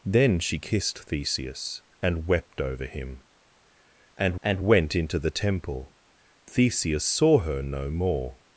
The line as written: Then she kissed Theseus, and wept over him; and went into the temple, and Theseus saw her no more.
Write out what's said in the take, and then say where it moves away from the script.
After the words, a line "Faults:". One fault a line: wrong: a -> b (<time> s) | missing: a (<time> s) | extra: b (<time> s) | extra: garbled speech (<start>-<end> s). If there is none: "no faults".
Then she kissed Theseus, and wept over him; and and went into the temple, Theseus saw her no more.
Faults:
extra: and (4.4 s)
missing: and (6.0 s)